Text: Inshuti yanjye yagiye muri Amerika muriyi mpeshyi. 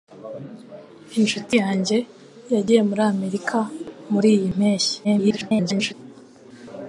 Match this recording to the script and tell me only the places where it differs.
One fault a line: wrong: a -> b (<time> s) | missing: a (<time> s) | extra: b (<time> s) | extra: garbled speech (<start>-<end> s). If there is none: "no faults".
extra: garbled speech (5.0-5.9 s)